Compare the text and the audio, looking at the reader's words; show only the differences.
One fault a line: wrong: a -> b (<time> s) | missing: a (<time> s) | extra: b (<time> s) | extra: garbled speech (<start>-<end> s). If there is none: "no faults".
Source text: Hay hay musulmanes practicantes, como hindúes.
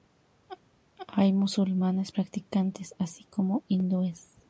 missing: hay (1.3 s)
extra: así (3.0 s)